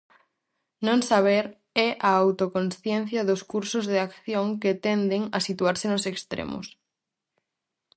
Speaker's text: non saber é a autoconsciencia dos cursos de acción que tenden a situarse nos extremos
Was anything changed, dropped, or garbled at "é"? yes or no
no